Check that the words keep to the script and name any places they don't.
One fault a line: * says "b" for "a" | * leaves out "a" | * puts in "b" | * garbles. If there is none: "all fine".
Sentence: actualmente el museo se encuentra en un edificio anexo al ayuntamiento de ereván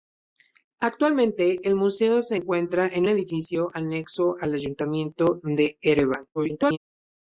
* leaves out "un"
* garbles